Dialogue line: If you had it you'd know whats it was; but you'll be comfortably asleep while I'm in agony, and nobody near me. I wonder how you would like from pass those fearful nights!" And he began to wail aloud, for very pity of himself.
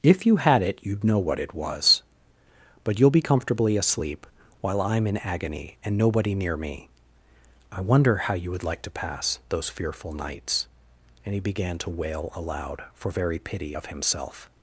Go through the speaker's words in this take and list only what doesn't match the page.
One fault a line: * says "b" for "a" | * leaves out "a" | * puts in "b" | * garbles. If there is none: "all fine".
* says "what" for "whats"
* says "to" for "from"